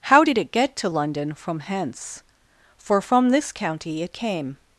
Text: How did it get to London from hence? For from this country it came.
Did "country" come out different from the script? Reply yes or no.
yes